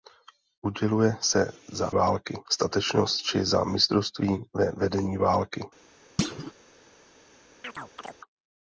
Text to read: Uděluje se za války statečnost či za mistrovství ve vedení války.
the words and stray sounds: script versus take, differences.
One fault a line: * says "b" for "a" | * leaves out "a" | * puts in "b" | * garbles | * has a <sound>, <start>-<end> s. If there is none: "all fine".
* has a thud, 6.2-6.5 s
* has a chirp, 7.6-8.2 s